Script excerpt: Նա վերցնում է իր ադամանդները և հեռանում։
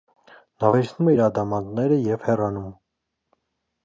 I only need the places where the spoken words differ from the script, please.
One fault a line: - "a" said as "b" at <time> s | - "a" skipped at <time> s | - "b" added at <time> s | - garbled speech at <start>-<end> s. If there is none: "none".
none